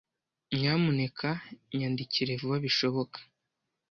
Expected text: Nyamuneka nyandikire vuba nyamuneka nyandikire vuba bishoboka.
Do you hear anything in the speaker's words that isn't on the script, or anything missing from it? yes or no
yes